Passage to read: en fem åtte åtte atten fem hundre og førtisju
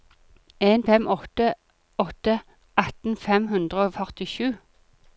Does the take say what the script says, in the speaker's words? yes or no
yes